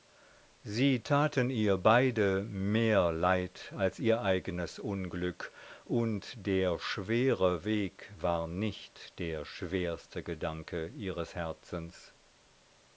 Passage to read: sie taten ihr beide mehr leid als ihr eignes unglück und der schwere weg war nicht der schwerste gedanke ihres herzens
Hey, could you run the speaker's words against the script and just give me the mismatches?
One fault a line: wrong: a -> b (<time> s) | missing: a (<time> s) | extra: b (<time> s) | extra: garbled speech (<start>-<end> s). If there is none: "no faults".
no faults